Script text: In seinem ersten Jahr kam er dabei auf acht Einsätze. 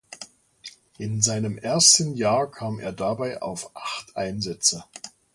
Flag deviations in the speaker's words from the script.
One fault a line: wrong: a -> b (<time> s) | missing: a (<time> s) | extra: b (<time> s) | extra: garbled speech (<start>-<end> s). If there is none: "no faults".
no faults